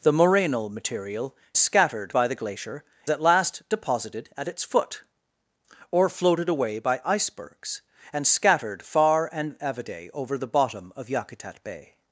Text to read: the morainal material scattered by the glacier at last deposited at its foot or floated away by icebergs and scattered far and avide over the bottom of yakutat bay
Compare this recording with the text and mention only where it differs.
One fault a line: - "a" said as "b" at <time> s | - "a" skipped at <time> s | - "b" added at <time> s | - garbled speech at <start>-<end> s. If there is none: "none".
none